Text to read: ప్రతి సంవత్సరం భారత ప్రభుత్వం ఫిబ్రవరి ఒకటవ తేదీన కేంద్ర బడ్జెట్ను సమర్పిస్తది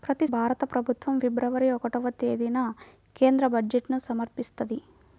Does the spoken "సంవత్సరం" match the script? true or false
false